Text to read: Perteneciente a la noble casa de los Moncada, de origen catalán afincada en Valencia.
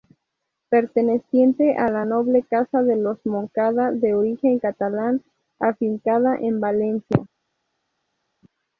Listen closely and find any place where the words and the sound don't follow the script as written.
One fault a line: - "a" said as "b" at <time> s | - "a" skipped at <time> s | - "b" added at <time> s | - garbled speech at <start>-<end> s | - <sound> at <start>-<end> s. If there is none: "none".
none